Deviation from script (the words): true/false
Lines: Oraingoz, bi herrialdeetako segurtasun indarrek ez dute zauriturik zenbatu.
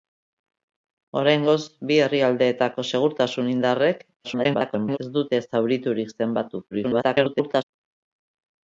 true